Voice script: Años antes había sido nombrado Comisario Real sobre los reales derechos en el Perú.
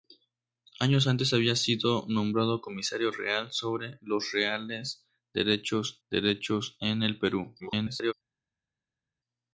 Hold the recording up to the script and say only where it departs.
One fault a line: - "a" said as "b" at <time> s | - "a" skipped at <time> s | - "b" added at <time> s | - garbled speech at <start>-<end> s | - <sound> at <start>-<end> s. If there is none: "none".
- "derechos" added at 6.1 s
- garbled speech at 7.6-8.1 s